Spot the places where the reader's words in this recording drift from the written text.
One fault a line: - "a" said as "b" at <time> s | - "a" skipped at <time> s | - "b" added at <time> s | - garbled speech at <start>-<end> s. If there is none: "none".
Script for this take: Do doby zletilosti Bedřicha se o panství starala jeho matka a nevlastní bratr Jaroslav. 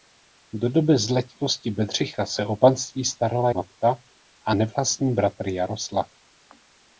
- "jeho" skipped at 3.5 s